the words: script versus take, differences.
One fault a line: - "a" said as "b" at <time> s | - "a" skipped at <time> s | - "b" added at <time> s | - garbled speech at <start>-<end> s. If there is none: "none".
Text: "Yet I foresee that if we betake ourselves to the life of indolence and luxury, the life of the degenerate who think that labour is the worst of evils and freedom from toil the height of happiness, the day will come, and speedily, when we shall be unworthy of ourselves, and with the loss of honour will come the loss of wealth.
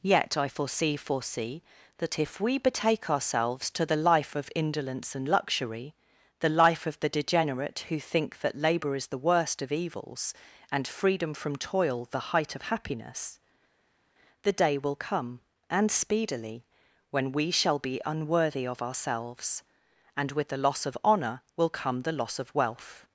- "foresee" added at 1.0 s